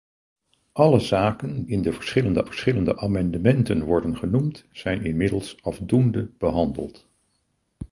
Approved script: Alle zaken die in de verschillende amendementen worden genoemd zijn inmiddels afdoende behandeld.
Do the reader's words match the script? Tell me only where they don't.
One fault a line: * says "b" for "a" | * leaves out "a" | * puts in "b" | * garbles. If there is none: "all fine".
* leaves out "die"
* puts in "verschillende"